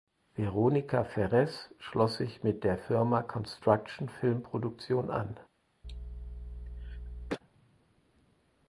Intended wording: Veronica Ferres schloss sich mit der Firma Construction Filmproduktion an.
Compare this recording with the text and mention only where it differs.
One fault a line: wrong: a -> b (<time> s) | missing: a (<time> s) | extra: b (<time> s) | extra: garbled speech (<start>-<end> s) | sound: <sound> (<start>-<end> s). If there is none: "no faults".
sound: cough (5.8-7.4 s)